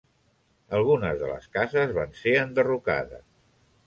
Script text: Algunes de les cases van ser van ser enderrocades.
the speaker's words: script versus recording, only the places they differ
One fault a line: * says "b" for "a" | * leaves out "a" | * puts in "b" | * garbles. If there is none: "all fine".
* leaves out "van ser"